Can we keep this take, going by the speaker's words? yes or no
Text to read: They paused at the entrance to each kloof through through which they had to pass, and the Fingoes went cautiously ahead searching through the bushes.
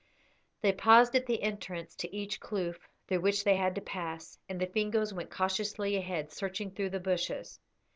no